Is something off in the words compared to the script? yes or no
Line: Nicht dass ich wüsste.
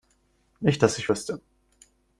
no